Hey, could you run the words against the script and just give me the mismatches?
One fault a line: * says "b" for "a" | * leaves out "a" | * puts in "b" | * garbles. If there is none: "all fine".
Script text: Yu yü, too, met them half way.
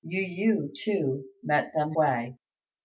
* leaves out "half"